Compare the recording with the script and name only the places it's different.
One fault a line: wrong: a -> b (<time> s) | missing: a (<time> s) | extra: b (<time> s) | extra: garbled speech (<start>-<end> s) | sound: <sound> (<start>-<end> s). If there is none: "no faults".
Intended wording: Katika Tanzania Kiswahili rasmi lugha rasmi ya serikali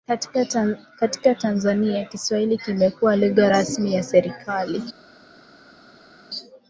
wrong: rasmi -> kimekuwa (2.6 s)